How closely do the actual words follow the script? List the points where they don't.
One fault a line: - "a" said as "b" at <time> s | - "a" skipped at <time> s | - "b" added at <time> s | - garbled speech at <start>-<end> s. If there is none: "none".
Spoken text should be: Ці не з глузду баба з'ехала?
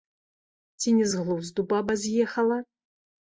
none